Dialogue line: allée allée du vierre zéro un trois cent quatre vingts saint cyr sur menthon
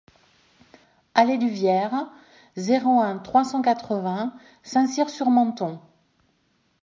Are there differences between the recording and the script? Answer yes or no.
yes